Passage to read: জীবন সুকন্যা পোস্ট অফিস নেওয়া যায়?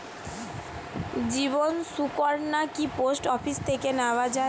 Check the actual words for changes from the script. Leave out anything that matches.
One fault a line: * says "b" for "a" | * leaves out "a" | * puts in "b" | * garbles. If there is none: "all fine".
* puts in "কি"
* puts in "থেকে"